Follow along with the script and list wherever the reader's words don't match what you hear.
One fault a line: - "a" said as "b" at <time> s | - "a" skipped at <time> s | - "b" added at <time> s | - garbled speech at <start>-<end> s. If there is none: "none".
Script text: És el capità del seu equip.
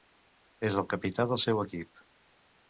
none